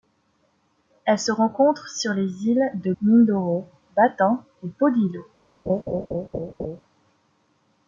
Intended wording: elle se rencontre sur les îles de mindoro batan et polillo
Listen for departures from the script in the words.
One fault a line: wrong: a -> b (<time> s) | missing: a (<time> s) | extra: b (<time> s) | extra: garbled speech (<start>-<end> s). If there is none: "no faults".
no faults